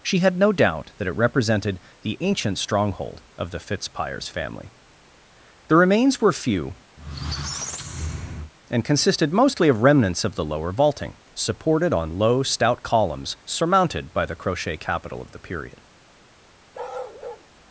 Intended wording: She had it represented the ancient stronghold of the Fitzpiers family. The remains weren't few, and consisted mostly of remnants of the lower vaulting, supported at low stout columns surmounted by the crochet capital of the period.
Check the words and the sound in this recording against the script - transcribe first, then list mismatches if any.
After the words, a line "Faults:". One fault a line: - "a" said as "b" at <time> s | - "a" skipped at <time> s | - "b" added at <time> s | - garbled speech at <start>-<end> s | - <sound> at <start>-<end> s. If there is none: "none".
She had no doubt that it represented the ancient stronghold of the Fitzpiers family. The remains were few, and consisted mostly of remnants of the lower vaulting, supported on low stout columns surmounted by the crochet capital of the period.
Faults:
- "no doubt that" added at 0.4 s
- "weren't" said as "were" at 6.2 s
- squeak at 7.0-8.5 s
- "at" said as "on" at 11.9 s
- bark at 16.7-17.5 s